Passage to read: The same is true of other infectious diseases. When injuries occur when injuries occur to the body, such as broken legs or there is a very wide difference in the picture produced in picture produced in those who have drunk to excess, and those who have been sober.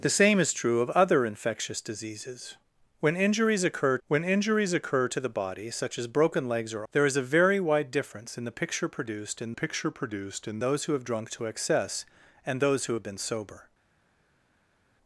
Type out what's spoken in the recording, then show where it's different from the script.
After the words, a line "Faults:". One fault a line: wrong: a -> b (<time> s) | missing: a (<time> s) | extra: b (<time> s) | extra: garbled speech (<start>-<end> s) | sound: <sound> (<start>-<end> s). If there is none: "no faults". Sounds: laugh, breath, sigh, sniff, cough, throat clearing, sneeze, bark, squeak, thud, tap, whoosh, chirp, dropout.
The same is true of other infectious diseases. When injuries occur when injuries occur to the body, such as broken legs or there is a very wide difference in the picture produced in picture produced in those who have drunk to excess, and those who have been sober.
Faults:
no faults